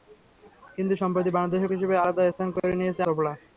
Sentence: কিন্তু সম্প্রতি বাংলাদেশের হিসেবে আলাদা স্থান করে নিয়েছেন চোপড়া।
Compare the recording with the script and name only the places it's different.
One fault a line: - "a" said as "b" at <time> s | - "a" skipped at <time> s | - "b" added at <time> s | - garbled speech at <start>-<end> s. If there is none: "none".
none